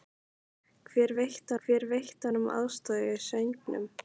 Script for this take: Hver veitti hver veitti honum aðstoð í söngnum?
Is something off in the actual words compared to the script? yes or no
no